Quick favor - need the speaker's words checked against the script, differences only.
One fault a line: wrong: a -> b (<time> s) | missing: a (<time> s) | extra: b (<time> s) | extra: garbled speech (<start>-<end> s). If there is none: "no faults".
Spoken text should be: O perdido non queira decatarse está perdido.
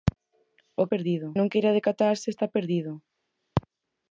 no faults